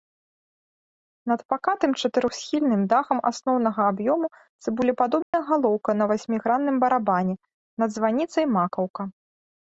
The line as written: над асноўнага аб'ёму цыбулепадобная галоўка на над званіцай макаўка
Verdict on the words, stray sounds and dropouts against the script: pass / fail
fail